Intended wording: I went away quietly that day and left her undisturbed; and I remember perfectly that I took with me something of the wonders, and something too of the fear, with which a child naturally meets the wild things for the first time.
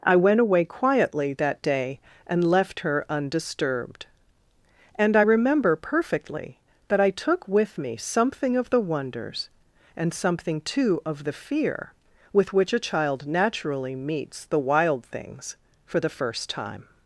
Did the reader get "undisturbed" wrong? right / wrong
right